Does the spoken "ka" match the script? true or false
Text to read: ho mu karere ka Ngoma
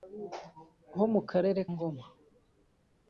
false